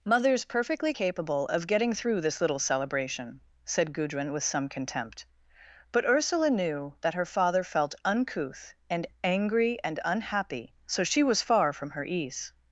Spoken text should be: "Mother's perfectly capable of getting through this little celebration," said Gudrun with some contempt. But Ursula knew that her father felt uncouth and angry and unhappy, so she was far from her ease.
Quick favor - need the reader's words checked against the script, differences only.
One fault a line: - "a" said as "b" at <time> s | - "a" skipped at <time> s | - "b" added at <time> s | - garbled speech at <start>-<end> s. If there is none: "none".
none